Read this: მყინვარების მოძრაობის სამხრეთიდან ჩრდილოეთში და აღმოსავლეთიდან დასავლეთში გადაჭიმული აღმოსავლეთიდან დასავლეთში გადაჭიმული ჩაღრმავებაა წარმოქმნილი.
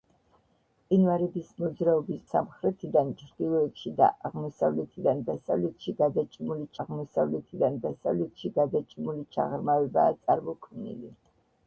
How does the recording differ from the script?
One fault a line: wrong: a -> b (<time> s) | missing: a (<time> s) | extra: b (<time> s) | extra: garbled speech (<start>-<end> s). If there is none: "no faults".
no faults